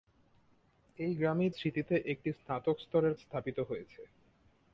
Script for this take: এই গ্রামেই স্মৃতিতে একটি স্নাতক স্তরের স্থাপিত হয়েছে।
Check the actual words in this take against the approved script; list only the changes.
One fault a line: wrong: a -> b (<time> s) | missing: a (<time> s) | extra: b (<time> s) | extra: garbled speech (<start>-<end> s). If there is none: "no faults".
no faults